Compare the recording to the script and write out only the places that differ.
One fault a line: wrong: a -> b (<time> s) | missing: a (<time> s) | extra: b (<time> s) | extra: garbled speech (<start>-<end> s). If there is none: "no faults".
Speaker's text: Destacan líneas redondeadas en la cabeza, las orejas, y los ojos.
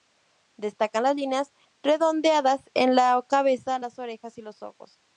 extra: las (1.0 s)